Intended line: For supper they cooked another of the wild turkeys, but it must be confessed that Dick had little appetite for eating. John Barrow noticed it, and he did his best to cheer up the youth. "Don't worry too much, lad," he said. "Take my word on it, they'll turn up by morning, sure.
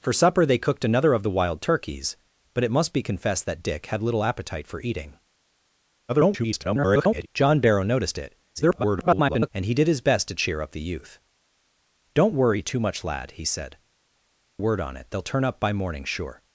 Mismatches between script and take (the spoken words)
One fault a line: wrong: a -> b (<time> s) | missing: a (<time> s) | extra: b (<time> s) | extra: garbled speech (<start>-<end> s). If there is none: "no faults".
extra: garbled speech (6.1-7.3 s)
extra: garbled speech (8.6-9.5 s)
missing: Take my (13.8 s)